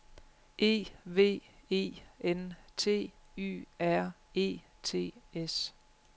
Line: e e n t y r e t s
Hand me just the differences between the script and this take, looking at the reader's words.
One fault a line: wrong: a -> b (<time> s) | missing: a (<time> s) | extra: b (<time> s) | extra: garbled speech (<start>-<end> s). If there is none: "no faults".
extra: v (1.1 s)